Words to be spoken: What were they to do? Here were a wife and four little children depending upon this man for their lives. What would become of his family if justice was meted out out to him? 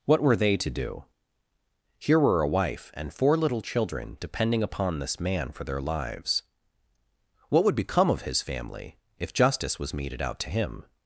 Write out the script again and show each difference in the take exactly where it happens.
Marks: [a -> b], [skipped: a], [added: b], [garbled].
What were they to do? Here were a wife and four little children depending upon this man for their lives. What would become of his family if justice was meted out [skipped: out] to him?